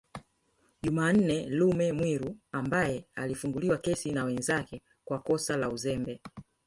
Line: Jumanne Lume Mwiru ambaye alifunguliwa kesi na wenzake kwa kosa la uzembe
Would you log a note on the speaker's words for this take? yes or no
no